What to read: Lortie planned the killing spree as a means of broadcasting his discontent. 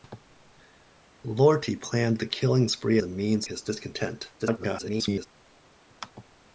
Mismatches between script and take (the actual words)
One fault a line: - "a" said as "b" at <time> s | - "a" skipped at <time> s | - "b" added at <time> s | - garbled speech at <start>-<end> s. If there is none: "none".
- "as" skipped at 3.0 s
- "of broadcasting" skipped at 3.5 s
- garbled speech at 4.4-5.3 s